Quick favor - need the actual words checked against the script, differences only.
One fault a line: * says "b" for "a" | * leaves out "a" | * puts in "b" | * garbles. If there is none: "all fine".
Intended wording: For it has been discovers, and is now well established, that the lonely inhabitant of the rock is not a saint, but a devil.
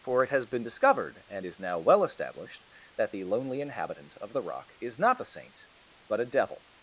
* says "discovered" for "discovers"